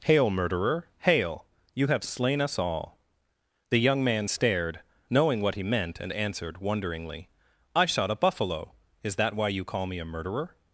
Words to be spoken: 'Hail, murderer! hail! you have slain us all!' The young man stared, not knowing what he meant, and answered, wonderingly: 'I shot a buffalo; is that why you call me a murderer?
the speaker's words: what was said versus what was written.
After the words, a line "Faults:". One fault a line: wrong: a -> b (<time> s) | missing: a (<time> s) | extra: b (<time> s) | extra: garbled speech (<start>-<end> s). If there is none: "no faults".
'Hail, murderer! hail! you have slain us all!' The young man stared, knowing what he meant, and answered, wonderingly: 'I shot a buffalo; is that why you call me a murderer?
Faults:
missing: not (4.8 s)